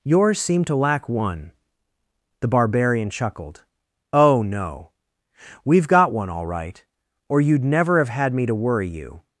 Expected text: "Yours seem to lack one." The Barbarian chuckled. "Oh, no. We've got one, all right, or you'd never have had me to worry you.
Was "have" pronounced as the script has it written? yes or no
yes